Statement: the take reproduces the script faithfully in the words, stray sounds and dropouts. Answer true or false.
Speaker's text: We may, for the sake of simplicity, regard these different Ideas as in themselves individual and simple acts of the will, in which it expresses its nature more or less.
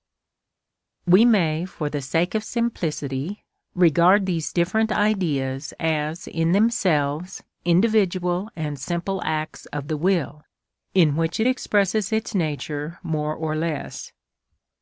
true